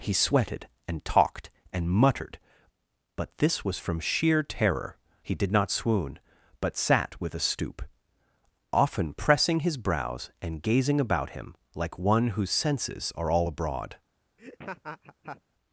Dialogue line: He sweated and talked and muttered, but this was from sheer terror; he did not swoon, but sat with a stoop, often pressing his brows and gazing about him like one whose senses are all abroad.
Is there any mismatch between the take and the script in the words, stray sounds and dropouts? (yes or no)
yes